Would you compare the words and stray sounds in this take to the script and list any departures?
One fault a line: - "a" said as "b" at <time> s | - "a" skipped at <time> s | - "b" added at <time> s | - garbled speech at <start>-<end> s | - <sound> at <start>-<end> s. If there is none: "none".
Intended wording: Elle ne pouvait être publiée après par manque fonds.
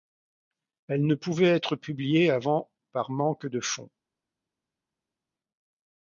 - "après" said as "avant" at 2.3 s
- "de" added at 3.5 s